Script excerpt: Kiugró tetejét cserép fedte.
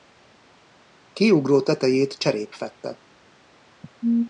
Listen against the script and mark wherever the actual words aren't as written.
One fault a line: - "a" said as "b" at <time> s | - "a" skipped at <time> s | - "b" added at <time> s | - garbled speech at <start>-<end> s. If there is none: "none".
none